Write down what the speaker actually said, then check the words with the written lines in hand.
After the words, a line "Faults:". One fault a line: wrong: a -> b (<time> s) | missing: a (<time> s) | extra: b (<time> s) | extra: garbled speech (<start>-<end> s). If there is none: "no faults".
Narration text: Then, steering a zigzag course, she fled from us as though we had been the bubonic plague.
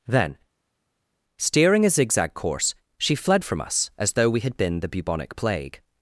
Then, steering a zigzag course, she fled from us as though we had been the bubonic plague.
Faults:
no faults